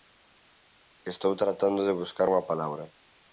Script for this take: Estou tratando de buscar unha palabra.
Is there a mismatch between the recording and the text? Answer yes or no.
no